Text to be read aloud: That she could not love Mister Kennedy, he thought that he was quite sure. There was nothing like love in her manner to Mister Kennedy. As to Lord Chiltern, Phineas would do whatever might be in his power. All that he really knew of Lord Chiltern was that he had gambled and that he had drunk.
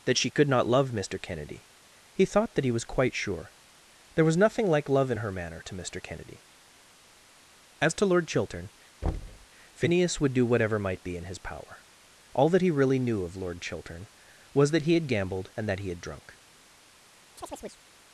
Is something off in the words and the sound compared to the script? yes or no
yes